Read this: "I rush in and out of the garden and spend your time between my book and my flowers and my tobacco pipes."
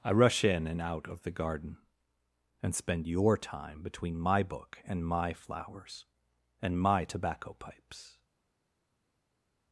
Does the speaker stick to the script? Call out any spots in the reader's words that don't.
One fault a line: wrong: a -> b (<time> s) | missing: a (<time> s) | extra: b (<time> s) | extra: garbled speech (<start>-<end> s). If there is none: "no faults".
no faults